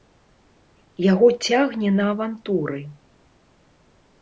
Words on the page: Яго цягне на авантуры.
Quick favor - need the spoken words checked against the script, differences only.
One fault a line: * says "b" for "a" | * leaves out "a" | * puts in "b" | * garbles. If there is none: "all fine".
all fine